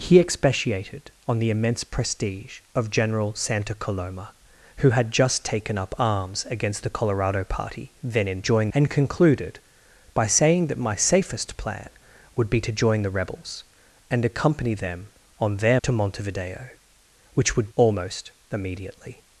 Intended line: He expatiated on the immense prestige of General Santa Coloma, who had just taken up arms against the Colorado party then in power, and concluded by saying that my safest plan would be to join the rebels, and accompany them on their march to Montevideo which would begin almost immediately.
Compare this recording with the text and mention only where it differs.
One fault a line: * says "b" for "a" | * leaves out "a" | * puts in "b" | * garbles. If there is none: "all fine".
* says "join" for "power"
* leaves out "march"
* leaves out "begin"